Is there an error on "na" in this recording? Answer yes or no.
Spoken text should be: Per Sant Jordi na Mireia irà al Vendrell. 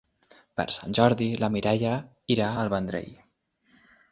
no